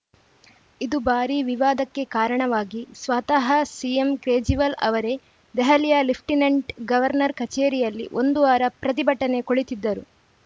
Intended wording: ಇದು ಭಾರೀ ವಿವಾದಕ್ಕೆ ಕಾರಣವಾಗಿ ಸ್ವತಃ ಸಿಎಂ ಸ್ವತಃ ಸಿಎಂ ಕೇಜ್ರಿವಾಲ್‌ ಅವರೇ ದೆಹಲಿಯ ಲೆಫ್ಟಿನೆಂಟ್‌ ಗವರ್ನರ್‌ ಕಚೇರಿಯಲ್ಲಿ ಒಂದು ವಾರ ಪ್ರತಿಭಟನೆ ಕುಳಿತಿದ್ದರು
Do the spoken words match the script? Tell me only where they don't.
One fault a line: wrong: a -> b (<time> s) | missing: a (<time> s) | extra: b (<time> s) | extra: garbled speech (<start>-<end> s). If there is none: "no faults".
missing: ಸ್ವತಃ ಸಿಎಂ (4.1 s)